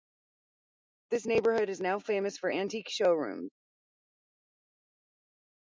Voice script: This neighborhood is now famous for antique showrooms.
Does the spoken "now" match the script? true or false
true